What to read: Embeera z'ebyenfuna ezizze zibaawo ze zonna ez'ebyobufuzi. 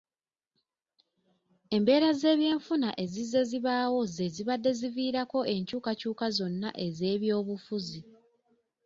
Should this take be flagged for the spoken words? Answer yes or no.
yes